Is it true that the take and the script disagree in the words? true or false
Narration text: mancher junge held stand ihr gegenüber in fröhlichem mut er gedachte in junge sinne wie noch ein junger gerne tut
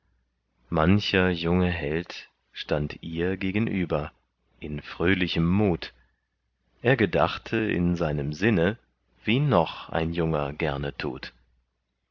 true